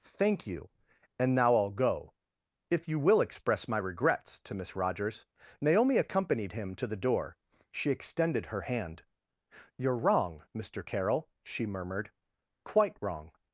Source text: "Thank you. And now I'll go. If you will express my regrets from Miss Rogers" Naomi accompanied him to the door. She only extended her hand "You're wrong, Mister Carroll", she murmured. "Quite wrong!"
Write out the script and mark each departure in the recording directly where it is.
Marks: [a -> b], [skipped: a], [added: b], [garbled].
"Thank you. And now I'll go. If you will express my regrets [from -> to] Miss Rogers" Naomi accompanied him to the door. She [skipped: only] extended her hand "You're wrong, Mister Carroll", she murmured. "Quite wrong!"